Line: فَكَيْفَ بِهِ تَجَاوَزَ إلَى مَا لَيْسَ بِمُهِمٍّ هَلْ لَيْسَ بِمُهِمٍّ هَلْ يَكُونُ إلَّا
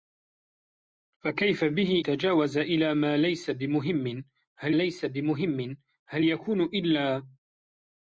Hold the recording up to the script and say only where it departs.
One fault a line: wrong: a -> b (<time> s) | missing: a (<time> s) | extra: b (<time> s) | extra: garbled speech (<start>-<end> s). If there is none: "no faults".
no faults